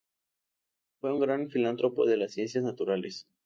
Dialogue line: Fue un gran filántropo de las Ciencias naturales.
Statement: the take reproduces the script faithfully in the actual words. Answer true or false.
true